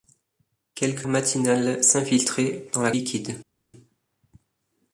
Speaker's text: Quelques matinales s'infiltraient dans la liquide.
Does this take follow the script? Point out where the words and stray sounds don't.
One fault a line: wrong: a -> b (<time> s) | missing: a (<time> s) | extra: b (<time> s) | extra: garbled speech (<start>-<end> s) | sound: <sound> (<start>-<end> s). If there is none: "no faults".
no faults